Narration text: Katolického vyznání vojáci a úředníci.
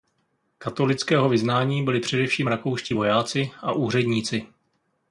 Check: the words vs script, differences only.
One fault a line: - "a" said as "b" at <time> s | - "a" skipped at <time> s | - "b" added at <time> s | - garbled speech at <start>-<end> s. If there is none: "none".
- "byli především rakouští" added at 1.8 s